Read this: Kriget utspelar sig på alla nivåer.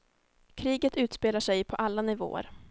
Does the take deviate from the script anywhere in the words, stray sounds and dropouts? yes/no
no